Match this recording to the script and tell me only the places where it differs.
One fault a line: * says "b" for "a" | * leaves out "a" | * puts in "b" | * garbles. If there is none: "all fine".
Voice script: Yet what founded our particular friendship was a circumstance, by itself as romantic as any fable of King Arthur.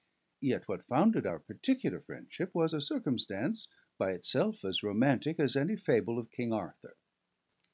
all fine